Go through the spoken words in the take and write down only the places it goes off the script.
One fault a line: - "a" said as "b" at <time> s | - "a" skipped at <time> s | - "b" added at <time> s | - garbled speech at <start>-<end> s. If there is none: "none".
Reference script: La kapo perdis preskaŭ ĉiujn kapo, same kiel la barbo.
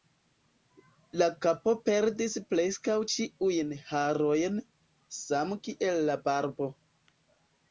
- "kapo" said as "harojn" at 3.9 s